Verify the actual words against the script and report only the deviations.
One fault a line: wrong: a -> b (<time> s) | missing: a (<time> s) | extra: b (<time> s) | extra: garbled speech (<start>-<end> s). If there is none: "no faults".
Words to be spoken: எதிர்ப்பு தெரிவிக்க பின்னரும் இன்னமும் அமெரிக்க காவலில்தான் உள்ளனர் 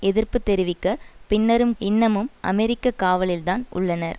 no faults